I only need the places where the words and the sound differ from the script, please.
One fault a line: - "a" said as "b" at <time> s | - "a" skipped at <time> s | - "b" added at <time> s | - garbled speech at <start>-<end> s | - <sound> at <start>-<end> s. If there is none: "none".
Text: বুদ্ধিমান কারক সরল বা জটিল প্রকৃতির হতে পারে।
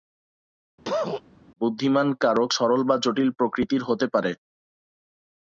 - cough at 0.9-1.2 s